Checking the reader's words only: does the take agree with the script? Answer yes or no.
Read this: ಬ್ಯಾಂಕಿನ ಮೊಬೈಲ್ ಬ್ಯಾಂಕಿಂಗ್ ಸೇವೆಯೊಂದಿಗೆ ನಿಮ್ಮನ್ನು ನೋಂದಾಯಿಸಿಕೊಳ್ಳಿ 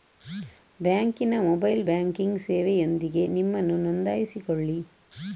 yes